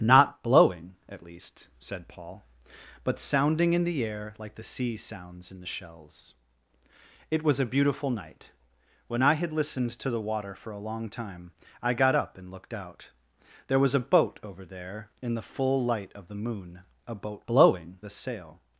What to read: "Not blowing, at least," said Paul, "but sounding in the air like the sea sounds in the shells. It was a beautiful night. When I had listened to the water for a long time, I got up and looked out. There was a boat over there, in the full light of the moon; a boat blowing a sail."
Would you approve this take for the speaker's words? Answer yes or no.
yes